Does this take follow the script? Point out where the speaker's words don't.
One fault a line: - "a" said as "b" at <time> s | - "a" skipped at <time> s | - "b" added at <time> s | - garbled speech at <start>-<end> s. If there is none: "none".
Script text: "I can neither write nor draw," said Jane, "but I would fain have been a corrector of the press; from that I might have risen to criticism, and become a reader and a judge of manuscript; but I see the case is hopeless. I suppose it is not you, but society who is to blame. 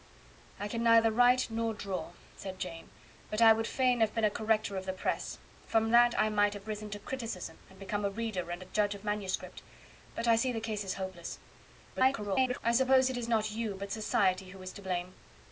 - garbled speech at 11.9-12.6 s